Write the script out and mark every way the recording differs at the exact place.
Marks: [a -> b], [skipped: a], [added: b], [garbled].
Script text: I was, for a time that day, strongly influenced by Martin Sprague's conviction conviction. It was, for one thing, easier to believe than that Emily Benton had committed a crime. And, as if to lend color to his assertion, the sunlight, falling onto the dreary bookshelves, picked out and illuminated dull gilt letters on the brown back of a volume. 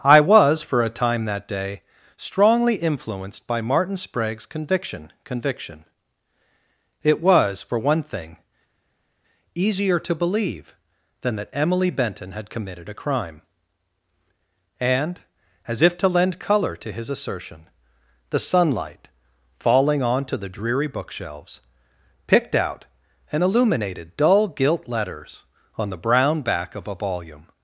I was, for a time that day, strongly influenced by Martin Sprague's conviction conviction. It was, for one thing, easier to believe than that Emily Benton had committed a crime. And, as if to lend color to his assertion, the sunlight, falling onto the dreary bookshelves, picked out and illuminated dull gilt letters on the brown back of a volume.